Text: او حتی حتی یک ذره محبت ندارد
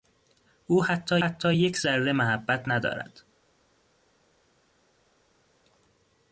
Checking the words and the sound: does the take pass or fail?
pass